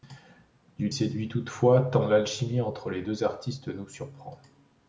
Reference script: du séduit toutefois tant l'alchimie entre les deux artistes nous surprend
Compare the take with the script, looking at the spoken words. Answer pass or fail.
pass